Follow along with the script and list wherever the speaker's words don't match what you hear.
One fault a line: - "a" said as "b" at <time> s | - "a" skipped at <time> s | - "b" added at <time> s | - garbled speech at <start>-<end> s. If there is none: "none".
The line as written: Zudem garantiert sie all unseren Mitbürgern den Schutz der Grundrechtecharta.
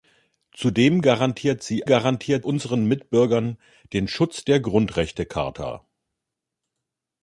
- "all" said as "garantiert" at 1.9 s